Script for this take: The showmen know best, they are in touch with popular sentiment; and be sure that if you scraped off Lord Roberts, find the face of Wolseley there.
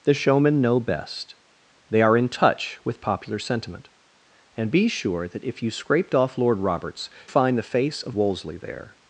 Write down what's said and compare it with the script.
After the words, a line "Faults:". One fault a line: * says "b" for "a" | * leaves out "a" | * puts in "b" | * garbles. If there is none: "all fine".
The showmen know best, they are in touch with popular sentiment; and be sure that if you scraped off Lord Roberts, find the face of Wolseley there.
Faults:
all fine